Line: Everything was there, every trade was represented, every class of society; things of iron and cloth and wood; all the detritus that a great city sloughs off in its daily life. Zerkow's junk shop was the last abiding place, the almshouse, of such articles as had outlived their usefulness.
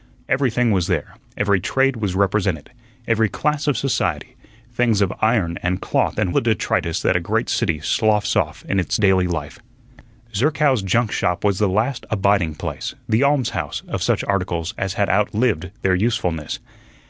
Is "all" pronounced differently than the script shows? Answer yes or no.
yes